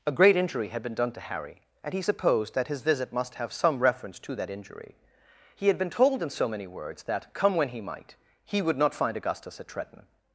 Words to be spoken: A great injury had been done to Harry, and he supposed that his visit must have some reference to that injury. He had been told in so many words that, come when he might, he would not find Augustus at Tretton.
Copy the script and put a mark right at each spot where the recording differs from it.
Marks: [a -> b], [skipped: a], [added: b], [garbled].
A great injury had been done to Harry, and he supposed that his visit must have some reference to that injury. He had been told in so many words that, come when he might, he would not find Augustus at Tretton.